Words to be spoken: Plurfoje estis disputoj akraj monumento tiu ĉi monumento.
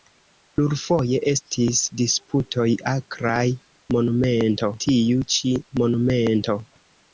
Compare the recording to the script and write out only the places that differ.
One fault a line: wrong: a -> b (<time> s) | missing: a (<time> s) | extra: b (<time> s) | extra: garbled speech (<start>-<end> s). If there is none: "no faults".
no faults